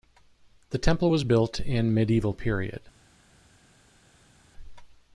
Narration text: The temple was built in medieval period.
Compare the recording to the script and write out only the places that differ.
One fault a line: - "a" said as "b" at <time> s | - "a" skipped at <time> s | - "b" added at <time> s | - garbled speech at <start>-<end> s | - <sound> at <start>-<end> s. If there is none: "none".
none